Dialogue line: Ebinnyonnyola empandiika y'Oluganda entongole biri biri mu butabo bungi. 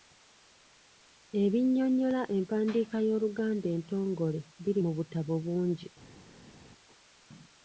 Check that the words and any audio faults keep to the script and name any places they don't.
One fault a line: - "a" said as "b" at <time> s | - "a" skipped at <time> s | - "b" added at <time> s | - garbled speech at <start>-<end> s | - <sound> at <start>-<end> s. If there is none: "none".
- "biri" skipped at 4.8 s